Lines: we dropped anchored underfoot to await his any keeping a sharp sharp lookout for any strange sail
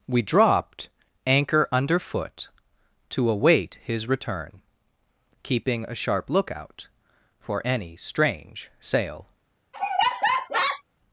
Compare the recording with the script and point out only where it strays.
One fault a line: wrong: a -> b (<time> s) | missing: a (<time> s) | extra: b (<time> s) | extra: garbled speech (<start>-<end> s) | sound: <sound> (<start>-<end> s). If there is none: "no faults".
wrong: anchored -> anchor (1.3 s)
wrong: any -> return (4.1 s)
missing: sharp (6.3 s)
sound: laugh (9.7-10.8 s)